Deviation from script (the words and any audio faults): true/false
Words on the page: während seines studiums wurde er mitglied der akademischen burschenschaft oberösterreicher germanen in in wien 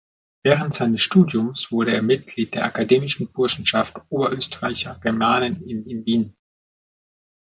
false